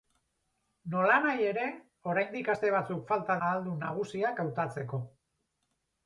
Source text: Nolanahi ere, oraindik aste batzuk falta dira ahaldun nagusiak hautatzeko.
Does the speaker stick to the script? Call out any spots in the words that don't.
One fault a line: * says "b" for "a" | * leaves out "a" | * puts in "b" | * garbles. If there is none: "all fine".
* leaves out "dira"